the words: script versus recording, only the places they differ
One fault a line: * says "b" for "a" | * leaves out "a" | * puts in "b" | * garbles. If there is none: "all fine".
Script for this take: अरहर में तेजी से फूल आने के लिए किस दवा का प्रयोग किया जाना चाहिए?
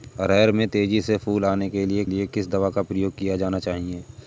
* puts in "लिए"